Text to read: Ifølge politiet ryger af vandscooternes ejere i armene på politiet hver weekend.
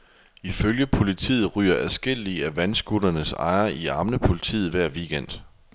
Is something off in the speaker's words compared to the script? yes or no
yes